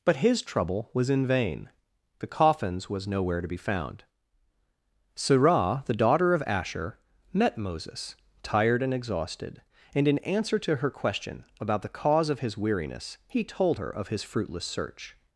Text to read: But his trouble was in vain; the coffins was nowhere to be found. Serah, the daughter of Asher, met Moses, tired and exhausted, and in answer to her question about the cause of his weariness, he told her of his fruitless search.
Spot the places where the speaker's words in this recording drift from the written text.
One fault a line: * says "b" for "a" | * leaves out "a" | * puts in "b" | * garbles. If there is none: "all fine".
all fine